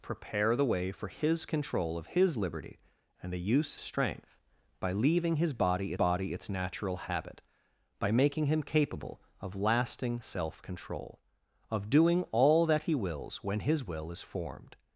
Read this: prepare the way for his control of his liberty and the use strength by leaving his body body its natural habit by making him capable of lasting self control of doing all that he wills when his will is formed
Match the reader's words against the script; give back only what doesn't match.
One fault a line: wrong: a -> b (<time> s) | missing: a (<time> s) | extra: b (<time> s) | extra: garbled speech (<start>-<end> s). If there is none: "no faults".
no faults